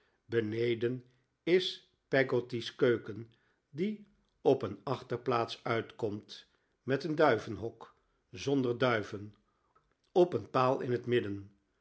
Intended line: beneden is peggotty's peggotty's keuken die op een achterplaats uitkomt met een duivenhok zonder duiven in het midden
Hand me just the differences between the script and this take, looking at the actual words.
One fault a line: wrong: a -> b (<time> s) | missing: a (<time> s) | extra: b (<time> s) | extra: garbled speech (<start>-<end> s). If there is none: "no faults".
missing: peggotty's (2.8 s)
extra: op een paal (10.1 s)